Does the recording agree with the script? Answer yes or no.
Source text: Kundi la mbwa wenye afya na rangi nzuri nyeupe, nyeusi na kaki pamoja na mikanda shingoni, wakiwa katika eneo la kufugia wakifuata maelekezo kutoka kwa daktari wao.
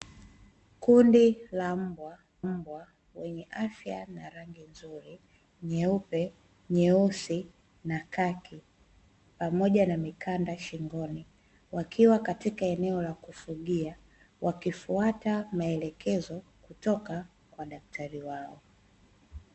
no